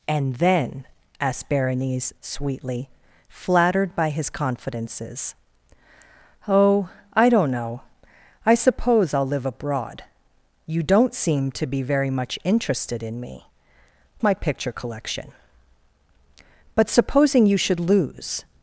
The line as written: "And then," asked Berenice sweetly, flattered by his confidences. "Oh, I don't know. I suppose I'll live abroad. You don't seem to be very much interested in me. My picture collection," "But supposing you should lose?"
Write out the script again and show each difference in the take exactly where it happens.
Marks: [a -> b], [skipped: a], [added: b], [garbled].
"And then," asked Berenice sweetly, flattered by his confidences. "Oh, I don't know. I suppose I'll live abroad. You don't seem to be very much interested in me. My picture collection," "But supposing you should lose?"